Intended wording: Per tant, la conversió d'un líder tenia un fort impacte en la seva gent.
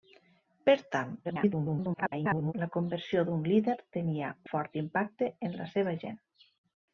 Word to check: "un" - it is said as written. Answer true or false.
false